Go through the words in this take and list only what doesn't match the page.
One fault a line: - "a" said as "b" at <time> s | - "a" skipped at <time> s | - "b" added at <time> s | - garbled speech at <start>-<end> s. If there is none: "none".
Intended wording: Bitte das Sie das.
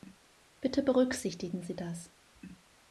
- "das" said as "berücksichtigen" at 0.8 s